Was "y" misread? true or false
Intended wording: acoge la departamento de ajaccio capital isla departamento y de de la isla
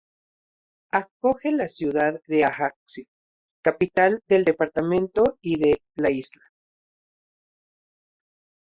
false